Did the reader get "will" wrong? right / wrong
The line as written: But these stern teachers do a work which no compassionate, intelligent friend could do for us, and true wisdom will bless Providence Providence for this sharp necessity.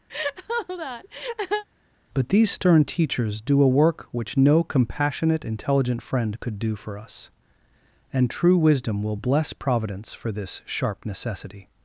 right